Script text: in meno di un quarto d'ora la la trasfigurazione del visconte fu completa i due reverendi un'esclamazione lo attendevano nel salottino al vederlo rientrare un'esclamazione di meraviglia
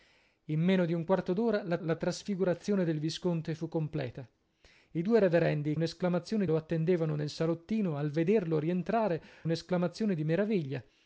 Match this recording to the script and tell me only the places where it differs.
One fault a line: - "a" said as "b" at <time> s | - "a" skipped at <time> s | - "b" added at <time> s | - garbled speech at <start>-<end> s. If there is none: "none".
none